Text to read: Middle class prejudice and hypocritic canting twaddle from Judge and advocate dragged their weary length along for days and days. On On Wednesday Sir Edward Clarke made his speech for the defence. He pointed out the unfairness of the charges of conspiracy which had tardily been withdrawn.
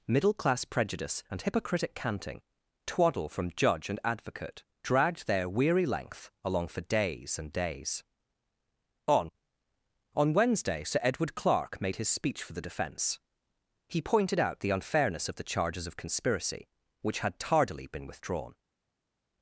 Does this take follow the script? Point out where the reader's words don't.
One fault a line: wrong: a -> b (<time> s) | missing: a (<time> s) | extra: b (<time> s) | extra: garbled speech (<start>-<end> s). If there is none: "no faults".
no faults